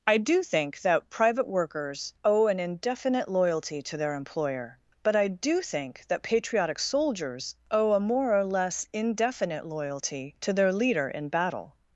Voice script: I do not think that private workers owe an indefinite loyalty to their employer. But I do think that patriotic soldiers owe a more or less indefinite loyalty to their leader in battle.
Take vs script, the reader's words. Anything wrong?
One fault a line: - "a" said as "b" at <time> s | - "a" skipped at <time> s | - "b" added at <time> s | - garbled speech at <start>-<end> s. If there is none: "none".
- "not" skipped at 0.4 s